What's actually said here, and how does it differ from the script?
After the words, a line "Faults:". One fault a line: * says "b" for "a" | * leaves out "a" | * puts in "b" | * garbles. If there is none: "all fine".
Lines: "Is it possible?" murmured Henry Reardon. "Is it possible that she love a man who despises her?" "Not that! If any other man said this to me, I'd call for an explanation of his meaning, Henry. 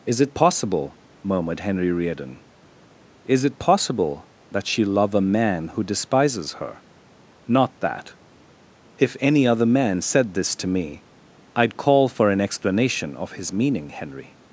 "Is it possible?" murmured Henry Reardon. "Is it possible that she love a man who despises her?" "Not that! If any other man said this to me, I'd call for an explanation of his meaning, Henry.
Faults:
all fine